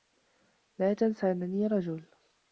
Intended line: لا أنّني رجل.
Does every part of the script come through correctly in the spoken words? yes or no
no